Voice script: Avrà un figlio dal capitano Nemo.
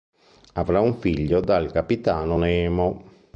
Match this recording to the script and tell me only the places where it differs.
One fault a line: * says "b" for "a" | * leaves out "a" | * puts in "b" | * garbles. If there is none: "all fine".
all fine